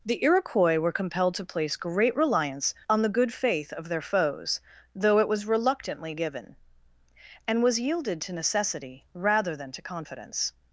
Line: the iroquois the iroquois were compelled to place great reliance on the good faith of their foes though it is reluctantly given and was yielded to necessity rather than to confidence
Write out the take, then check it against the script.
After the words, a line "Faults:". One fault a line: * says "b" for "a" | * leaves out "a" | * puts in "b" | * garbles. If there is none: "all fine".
the iroquois were compelled to place great reliance on the good faith of their foes though it was reluctantly given and was yielded to necessity rather than to confidence
Faults:
* leaves out "the iroquois"
* says "was" for "is"